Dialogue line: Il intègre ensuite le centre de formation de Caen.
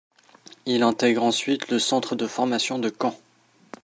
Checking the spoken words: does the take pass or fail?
pass